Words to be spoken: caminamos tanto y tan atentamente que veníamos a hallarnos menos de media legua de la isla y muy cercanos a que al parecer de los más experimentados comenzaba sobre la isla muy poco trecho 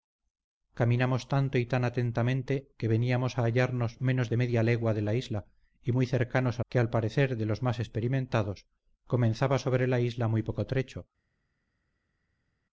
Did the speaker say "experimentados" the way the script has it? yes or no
yes